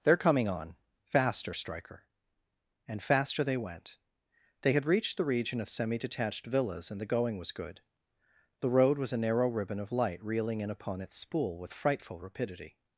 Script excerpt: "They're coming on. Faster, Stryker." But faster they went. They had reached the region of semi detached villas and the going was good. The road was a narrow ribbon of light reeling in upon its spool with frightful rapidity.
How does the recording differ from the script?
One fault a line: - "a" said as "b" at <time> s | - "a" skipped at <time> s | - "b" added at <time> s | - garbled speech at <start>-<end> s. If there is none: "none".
- "But" said as "And" at 2.9 s